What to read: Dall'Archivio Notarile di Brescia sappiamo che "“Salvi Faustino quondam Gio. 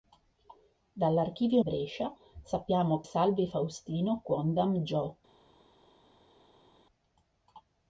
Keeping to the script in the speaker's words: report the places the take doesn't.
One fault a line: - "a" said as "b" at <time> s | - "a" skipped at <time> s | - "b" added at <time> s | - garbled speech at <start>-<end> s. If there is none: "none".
- "Notarile di" skipped at 1.6 s
- "che" skipped at 3.0 s